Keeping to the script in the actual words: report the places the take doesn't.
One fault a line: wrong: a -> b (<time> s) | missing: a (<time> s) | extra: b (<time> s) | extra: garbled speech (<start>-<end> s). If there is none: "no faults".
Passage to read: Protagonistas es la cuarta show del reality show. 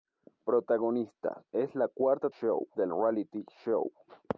no faults